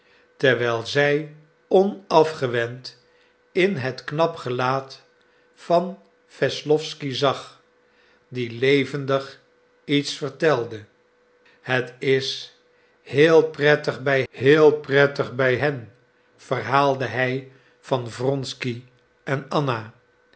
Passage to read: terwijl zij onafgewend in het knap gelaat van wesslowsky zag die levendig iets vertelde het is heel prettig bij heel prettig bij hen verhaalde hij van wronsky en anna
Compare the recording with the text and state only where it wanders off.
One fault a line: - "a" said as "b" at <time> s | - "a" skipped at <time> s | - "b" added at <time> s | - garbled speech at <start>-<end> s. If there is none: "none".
none